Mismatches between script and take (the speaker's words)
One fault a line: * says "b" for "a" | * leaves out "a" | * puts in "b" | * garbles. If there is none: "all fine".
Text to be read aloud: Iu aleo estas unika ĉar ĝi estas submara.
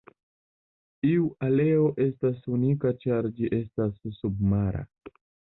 all fine